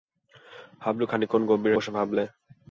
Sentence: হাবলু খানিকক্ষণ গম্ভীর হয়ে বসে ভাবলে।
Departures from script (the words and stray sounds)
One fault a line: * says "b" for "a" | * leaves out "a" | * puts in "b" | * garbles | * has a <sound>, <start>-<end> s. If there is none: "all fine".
* leaves out "হয়ে"